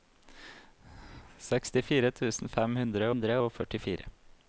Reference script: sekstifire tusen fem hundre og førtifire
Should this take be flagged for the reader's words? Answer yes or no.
yes